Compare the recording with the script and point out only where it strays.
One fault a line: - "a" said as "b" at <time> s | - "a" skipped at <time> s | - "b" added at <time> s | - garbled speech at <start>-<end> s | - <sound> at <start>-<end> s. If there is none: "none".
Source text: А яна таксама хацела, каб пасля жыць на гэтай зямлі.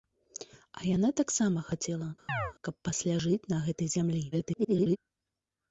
- chirp at 2.3-2.5 s
- garbled speech at 4.3-5.0 s